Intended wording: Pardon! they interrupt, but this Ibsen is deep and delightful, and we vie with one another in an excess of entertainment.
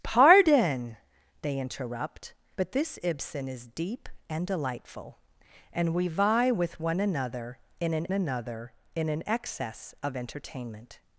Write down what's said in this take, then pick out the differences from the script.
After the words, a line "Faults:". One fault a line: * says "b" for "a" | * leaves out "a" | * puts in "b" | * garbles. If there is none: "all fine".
Pardon! they interrupt, but this Ibsen is deep and delightful, and we vie with one another in an another in an excess of entertainment.
Faults:
* puts in "another in an"